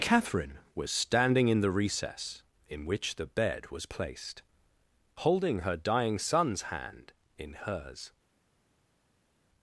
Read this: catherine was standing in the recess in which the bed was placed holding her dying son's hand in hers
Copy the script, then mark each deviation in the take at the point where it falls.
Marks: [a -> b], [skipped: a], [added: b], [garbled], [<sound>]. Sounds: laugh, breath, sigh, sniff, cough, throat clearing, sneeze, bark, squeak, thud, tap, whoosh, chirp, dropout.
catherine was standing in the recess in which the bed was placed holding her dying son's hand in hers